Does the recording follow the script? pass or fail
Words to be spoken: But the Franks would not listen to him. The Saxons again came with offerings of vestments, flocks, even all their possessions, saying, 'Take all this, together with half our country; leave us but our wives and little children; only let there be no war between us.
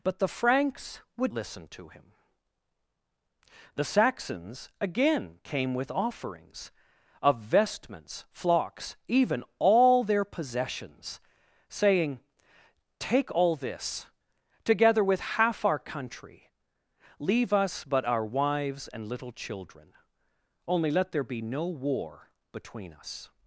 fail